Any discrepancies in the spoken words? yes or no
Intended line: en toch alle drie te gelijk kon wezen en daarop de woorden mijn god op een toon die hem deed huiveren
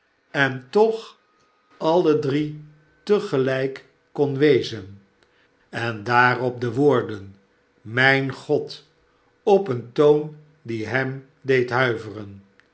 no